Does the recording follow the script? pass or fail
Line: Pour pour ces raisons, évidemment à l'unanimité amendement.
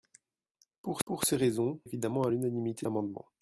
pass